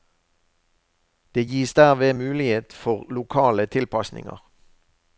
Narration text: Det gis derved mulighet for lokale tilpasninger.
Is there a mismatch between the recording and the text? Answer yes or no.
no